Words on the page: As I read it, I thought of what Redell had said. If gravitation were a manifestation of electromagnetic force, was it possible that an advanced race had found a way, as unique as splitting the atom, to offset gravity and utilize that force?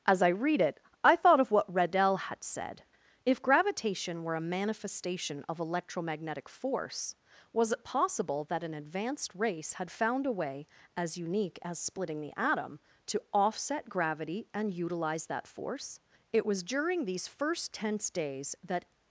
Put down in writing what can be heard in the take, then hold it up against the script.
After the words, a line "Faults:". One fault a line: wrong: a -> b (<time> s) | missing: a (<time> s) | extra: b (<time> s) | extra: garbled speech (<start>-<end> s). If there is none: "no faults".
As I read it, I thought of what Redell had said. If gravitation were a manifestation of electromagnetic force, was it possible that an advanced race had found a way, as unique as splitting the atom, to offset gravity and utilize that force? It was during these first tense days that
Faults:
extra: It was during these first tense days that (16.3 s)